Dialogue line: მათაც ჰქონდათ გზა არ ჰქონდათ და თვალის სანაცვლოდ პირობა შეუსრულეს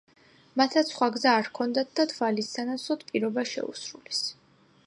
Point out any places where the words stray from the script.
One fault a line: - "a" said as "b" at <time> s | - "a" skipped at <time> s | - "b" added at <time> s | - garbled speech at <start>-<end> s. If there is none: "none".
- "ჰქონდათ" said as "სხვა" at 0.9 s